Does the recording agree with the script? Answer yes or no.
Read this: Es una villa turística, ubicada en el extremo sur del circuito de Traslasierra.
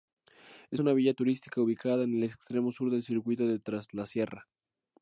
yes